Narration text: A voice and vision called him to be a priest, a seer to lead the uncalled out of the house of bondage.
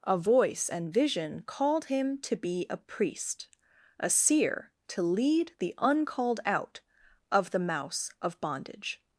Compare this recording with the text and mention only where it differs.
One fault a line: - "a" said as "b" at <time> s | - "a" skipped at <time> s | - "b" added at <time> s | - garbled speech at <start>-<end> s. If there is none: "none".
- "house" said as "mouse" at 7.6 s